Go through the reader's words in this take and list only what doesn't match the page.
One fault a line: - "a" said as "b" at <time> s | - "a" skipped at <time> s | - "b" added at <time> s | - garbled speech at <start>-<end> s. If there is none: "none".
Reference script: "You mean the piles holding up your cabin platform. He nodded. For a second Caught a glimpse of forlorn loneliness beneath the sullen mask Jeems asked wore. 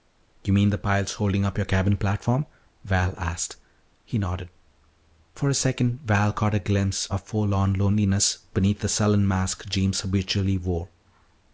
- "Val asked" added at 2.8 s
- "Val" added at 6.0 s
- "asked" said as "habitually" at 10.0 s